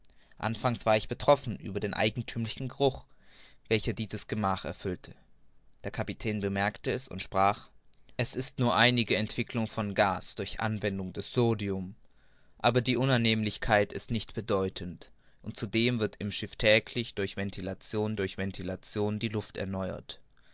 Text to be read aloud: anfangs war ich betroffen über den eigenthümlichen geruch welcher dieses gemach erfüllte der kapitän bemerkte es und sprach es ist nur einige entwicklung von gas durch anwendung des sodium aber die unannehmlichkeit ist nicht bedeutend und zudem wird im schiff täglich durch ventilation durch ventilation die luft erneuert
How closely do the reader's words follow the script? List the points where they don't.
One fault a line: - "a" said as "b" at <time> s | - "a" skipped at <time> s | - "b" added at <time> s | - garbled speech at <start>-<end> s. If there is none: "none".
none